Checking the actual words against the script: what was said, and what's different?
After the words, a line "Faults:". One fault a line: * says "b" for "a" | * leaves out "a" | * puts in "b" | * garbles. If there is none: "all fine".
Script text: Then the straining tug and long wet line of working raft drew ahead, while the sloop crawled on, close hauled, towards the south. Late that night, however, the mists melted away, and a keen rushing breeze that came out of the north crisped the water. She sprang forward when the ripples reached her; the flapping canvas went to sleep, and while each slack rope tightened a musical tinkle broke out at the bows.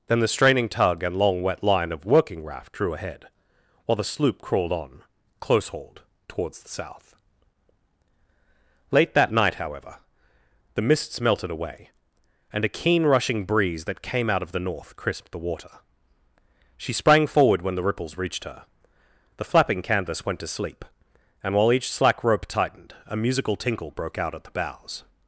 Then the straining tug and long wet line of working raft drew ahead, while the sloop crawled on, close hauled, towards the south. Late that night, however, the mists melted away, and a keen rushing breeze that came out of the north crisped the water. She sprang forward when the ripples reached her; the flapping canvas went to sleep, and while each slack rope tightened a musical tinkle broke out at the bows.
Faults:
all fine